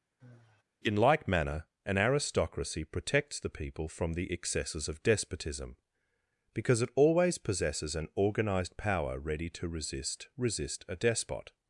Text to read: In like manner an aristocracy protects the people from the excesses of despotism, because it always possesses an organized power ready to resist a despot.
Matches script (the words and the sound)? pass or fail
fail